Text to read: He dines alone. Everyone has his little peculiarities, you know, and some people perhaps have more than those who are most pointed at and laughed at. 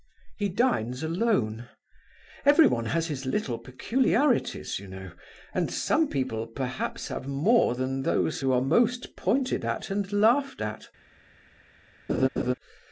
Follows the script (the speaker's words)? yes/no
yes